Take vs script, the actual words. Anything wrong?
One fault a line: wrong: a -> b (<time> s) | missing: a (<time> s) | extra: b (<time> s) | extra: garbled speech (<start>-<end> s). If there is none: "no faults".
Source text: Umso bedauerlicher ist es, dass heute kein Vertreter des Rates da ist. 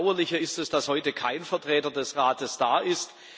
no faults